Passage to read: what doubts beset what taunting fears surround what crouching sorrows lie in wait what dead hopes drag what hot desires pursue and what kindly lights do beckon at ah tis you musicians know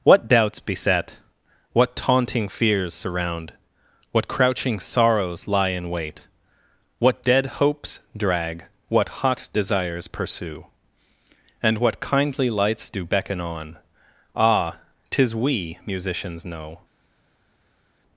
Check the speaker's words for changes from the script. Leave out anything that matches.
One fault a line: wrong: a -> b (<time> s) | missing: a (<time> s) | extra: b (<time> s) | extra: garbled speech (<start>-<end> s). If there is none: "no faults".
wrong: at -> on (13.4 s)
wrong: you -> we (15.3 s)